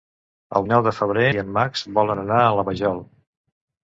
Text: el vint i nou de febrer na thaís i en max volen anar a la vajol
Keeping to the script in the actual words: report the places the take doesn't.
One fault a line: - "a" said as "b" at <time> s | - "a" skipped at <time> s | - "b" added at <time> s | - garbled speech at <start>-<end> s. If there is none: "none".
- "vint" skipped at 0.6 s
- "na thaís" skipped at 1.2 s